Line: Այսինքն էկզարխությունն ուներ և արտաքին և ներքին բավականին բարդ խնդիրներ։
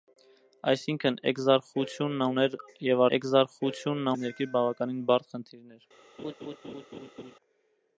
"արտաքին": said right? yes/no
no